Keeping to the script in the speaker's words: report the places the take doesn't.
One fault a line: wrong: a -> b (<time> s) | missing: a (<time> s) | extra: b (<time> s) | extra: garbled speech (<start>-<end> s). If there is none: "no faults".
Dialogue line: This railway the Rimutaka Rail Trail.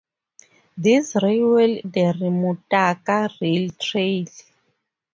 no faults